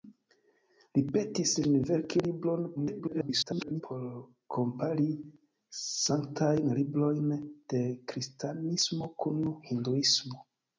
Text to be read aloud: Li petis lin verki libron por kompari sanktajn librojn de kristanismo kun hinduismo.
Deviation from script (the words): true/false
true